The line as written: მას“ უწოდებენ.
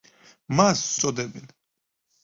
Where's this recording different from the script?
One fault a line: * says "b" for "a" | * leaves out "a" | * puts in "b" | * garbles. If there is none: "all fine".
all fine